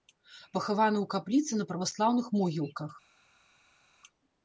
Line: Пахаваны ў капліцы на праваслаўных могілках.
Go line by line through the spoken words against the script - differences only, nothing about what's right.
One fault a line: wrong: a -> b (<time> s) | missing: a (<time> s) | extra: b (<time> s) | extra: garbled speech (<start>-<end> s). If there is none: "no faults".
no faults